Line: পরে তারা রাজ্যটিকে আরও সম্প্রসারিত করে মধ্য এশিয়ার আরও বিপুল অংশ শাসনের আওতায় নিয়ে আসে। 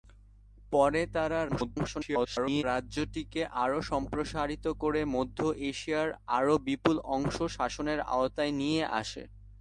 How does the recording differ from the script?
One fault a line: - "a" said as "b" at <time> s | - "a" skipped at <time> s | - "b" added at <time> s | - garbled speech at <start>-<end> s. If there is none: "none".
- garbled speech at 1.5-2.6 s